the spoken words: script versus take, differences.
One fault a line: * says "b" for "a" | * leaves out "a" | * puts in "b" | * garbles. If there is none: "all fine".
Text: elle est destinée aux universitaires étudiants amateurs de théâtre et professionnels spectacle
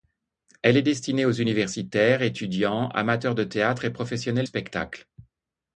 all fine